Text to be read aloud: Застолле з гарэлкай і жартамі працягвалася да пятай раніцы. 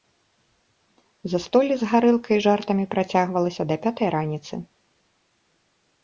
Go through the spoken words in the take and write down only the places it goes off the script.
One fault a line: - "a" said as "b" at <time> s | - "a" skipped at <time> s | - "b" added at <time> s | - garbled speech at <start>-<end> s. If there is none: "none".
none